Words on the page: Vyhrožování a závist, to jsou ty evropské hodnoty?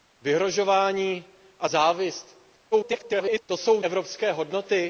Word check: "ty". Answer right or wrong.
wrong